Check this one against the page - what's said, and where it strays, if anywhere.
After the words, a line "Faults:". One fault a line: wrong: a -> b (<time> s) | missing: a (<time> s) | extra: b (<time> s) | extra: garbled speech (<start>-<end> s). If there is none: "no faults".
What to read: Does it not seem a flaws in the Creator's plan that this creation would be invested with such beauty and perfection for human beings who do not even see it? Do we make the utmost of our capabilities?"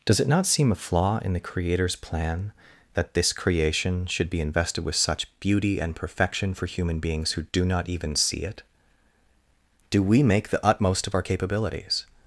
Does it not seem a flaw in the Creator's plan that this creation should be invested with such beauty and perfection for human beings who do not even see it? Do we make the utmost of our capabilities?"
Faults:
wrong: flaws -> flaw (0.8 s)
wrong: would -> should (4.1 s)